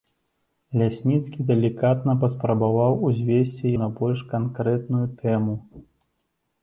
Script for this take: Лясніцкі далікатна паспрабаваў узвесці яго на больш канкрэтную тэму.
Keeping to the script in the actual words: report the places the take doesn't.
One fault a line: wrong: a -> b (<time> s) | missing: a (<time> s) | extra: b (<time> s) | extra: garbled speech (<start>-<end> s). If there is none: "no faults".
missing: яго (3.7 s)